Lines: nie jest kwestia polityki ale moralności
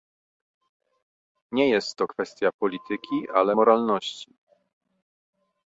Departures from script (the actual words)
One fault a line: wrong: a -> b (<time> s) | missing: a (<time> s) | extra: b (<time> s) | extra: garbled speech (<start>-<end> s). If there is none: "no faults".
extra: to (1.9 s)